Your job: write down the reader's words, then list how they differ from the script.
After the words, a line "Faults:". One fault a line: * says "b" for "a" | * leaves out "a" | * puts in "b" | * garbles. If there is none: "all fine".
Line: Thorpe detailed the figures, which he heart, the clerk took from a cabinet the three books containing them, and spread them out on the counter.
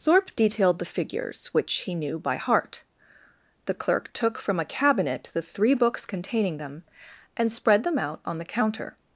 Thorpe detailed the figures, which he knew by heart, the clerk took from a cabinet the three books containing them, and spread them out on the counter.
Faults:
* puts in "knew by"